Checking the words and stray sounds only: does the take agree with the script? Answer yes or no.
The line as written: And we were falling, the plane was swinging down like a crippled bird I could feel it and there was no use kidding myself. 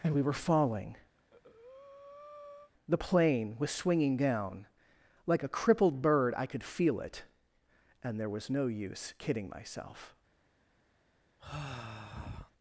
no